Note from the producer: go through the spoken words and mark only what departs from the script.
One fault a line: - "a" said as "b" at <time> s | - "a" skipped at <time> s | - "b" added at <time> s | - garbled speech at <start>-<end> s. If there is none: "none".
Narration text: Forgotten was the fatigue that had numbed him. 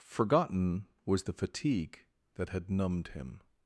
none